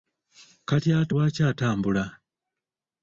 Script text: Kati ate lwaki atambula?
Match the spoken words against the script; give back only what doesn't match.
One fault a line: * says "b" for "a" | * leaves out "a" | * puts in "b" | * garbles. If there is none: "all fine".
all fine